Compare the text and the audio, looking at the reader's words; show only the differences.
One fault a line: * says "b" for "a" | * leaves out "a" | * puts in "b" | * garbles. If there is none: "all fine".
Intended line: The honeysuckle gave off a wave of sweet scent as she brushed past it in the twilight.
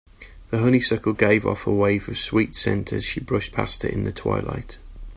all fine